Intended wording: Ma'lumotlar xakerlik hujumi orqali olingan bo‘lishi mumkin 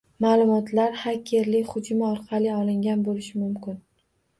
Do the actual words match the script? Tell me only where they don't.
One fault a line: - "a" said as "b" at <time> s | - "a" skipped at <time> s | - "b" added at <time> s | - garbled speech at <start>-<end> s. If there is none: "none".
none